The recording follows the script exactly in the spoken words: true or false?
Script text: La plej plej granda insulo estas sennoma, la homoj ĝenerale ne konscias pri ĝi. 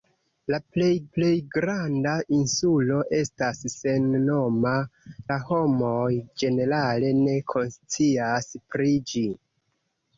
true